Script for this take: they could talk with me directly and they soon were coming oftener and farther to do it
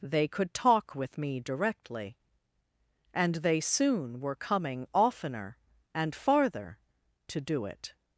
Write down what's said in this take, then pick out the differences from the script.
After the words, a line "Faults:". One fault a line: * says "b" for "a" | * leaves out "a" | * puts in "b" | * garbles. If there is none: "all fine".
they could talk with me directly and they soon were coming oftener and farther to do it
Faults:
all fine